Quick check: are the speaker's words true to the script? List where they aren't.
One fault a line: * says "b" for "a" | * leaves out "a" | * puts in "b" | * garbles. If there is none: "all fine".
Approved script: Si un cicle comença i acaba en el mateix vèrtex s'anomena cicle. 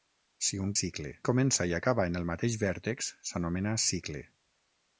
all fine